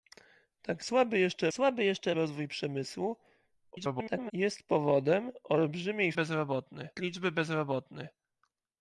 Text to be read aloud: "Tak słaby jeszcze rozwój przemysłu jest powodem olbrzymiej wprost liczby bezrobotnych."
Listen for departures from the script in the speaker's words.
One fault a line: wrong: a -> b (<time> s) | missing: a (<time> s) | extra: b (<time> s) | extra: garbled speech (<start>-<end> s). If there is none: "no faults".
extra: słaby jeszcze (1.5 s)
extra: garbled speech (3.7-4.3 s)
wrong: wprost -> bezrobotnych (6.1 s)